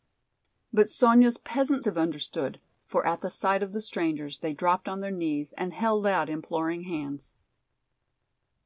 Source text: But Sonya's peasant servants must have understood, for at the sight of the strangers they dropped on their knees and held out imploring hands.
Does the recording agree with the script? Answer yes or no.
no